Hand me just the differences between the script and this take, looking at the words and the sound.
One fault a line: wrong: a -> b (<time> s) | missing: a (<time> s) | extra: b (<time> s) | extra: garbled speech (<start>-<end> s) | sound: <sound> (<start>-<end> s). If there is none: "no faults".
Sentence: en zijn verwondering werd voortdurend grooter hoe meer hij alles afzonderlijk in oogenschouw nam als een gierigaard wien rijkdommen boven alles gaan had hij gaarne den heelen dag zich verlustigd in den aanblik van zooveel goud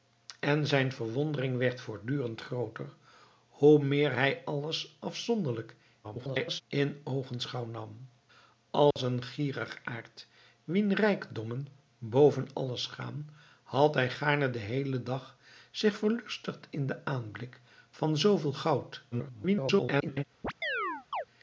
extra: garbled speech (6.0-6.6 s)
sound: dropout (8.9-9.0 s)
extra: garbled speech (19.1-20.2 s)
sound: chirp (20.4-21.2 s)